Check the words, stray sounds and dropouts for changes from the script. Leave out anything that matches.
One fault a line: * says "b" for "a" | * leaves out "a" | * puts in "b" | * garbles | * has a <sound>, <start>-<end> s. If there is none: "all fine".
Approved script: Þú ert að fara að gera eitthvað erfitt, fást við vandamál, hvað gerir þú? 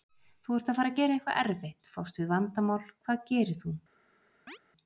* has a chirp, 4.5-4.6 s